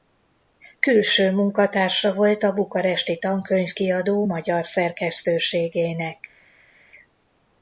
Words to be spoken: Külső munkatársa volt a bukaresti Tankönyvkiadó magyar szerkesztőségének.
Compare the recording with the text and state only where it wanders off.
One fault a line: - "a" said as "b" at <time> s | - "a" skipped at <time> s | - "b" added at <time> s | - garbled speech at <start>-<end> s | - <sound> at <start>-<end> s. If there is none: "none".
none